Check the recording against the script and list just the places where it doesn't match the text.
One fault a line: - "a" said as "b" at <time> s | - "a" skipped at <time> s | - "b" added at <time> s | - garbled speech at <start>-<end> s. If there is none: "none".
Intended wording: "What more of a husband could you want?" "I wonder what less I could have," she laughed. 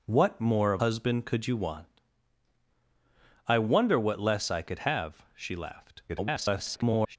- "a" skipped at 0.8 s
- garbled speech at 6.1-7.2 s